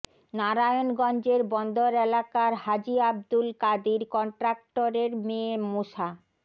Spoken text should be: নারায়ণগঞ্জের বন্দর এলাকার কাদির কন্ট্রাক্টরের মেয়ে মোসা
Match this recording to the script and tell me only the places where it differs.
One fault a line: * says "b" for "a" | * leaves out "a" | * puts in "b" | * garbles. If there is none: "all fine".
* puts in "হাজী আব্দুল"